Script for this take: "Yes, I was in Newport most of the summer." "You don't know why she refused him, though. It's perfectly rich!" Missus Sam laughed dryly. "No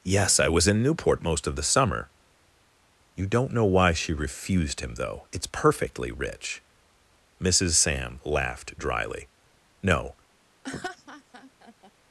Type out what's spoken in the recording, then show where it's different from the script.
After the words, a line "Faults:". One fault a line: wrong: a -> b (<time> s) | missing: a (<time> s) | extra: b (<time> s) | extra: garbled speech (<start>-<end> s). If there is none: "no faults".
"Yes, I was in Newport most of the summer." "You don't know why she refused him, though. It's perfectly rich!" Missus Sam laughed dryly. "No
Faults:
no faults